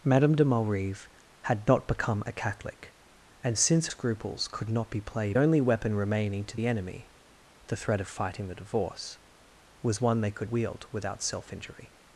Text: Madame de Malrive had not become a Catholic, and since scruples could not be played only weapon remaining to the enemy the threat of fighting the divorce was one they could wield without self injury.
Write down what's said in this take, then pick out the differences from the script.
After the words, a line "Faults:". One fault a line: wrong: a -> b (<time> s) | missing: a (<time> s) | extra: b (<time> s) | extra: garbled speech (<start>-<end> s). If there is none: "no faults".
Madame de Malrive had not become a Catholic, and since scruples could not be played only weapon remaining to the enemy the threat of fighting the divorce was one they could wield without self injury.
Faults:
no faults